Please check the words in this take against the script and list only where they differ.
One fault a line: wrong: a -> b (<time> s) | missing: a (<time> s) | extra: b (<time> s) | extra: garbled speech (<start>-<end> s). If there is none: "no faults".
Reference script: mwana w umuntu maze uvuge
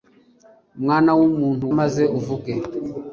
no faults